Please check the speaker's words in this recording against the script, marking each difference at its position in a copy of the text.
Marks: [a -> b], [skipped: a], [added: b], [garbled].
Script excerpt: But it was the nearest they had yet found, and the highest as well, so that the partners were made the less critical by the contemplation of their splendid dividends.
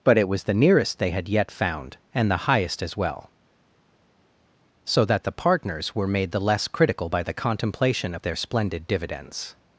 But it was the nearest they had yet found, and the highest as well, so that the partners were made the less critical by the contemplation of their splendid dividends.